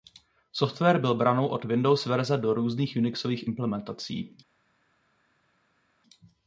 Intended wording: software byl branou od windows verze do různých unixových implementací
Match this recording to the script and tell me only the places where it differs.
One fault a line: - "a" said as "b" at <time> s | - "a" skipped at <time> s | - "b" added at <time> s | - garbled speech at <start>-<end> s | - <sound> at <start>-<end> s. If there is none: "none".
none